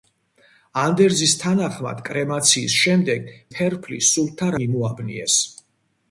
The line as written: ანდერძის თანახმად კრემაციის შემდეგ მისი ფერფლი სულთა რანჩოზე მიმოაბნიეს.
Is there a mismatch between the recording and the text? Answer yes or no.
yes